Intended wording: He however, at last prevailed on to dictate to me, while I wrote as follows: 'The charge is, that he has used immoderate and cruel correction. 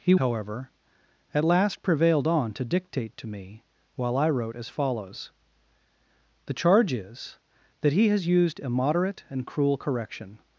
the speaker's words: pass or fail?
pass